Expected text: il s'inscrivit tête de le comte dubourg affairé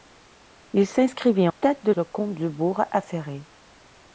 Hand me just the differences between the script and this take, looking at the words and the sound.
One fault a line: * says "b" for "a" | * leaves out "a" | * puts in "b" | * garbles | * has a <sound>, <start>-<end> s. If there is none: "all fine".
all fine